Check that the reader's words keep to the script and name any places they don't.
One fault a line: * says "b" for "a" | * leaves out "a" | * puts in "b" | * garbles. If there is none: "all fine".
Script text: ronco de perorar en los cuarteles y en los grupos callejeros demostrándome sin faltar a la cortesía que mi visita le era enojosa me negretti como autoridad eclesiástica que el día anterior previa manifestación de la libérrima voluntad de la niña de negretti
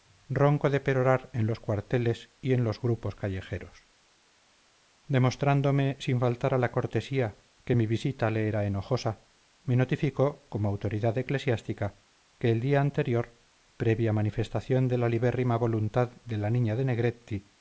* says "notificó" for "negretti"